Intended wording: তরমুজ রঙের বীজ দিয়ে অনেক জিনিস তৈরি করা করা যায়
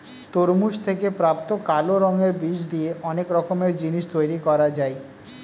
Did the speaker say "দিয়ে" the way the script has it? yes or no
yes